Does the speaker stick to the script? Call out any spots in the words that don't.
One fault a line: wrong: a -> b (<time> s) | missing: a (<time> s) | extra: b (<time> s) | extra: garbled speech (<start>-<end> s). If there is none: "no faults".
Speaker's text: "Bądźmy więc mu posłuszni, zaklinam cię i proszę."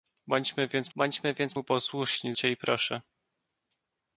extra: bądźmy więc (1.0 s)
missing: zaklinam (2.3 s)